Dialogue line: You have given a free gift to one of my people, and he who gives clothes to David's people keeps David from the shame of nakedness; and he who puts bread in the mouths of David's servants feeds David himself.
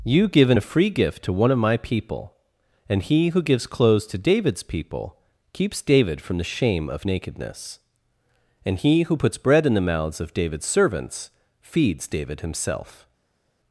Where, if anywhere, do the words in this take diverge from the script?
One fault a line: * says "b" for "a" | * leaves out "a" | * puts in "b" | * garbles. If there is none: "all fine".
* leaves out "have"